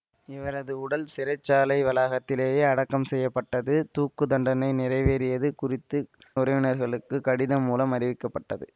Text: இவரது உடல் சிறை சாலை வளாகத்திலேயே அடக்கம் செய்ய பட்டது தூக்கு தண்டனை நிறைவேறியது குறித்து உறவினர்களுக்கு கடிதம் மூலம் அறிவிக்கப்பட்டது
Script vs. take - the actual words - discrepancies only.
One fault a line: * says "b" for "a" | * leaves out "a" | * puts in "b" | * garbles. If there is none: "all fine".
all fine